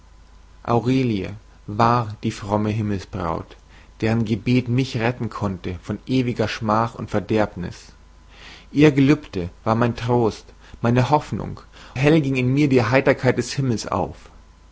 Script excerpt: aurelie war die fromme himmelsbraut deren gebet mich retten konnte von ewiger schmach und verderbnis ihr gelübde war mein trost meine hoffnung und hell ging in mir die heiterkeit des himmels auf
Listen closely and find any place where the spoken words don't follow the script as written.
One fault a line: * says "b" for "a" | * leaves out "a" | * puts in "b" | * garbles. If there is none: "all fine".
* leaves out "und"